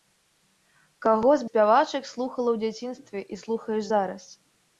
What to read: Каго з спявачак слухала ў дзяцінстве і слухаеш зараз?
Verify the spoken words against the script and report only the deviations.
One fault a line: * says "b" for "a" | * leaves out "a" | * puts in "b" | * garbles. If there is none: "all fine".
all fine